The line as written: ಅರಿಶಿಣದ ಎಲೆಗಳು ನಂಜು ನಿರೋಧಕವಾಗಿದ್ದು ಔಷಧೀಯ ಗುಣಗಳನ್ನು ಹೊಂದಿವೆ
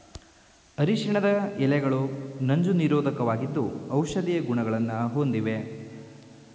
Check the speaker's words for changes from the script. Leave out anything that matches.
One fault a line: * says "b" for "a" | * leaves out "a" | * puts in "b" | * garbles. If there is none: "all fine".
all fine